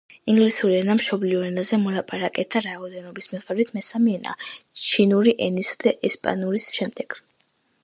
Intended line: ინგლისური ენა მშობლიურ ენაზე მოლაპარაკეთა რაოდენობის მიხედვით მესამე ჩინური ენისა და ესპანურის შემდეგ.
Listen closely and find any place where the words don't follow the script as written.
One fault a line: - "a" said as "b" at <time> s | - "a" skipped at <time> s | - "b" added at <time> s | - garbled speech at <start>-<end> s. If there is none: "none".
- "ენაა" added at 4.2 s